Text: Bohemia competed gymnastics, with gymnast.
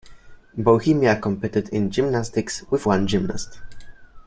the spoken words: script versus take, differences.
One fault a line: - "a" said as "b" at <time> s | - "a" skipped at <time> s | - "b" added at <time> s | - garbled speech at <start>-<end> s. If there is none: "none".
- "in" added at 1.7 s
- "one" added at 2.9 s